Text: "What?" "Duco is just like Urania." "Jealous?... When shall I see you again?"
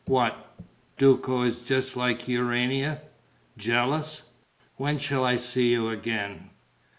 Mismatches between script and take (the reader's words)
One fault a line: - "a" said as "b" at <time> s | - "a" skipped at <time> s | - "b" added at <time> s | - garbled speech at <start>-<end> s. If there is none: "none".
none